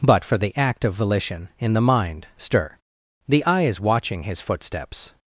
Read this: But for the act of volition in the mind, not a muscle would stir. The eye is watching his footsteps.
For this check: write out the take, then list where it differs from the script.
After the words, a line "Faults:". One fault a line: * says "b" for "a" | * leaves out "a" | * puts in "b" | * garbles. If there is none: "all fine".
But for the act of volition in the mind, stir. The eye is watching his footsteps.
Faults:
* leaves out "not a muscle would"